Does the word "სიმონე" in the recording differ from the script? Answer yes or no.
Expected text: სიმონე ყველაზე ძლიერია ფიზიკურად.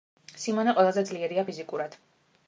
no